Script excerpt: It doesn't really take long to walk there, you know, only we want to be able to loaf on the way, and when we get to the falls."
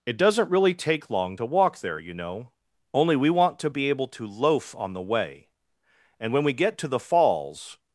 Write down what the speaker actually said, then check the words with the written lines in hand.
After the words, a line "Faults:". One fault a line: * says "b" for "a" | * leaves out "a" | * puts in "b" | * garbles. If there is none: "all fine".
It doesn't really take long to walk there, you know, only we want to be able to loaf on the way, and when we get to the falls."
Faults:
all fine